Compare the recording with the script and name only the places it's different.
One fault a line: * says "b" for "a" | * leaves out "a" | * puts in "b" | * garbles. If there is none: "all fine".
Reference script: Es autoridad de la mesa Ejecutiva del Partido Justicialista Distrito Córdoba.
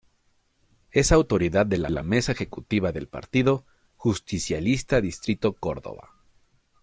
* puts in "la"